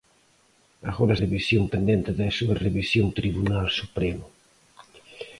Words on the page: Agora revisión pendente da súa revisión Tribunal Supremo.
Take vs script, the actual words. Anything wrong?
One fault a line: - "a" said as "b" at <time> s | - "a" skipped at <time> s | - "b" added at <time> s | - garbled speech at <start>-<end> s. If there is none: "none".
none